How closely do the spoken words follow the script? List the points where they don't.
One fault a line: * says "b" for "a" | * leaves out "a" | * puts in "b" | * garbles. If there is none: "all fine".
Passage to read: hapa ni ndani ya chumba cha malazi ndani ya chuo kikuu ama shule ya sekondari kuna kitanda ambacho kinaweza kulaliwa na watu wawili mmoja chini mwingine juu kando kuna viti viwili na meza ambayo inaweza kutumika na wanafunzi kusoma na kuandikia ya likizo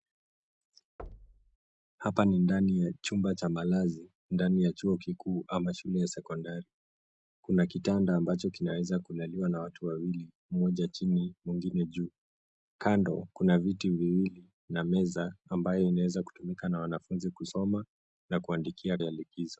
all fine